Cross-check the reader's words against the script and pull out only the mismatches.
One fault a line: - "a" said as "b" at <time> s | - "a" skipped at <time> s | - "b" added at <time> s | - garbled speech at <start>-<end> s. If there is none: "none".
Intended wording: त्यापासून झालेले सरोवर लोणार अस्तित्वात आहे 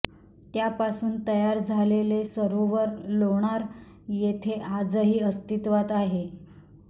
- "तयार" added at 1.3 s
- "येथे आजही" added at 4.1 s